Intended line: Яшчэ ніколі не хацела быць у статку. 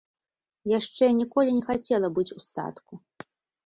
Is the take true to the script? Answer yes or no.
yes